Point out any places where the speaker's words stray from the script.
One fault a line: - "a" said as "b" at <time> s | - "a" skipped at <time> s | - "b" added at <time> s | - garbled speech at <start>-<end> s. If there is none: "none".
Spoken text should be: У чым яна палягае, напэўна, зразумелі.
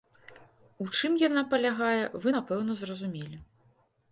- "вы" added at 2.2 s